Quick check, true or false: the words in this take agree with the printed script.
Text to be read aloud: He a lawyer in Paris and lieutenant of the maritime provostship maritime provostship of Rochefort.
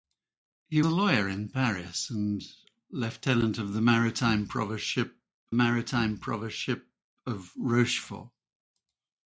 true